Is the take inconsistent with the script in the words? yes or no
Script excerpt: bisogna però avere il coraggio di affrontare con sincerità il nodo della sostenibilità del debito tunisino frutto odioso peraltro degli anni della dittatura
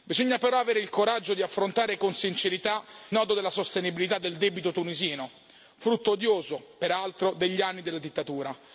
yes